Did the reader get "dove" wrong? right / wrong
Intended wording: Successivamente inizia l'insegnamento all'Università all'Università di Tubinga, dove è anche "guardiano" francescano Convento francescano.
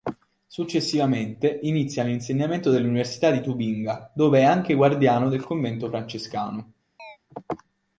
right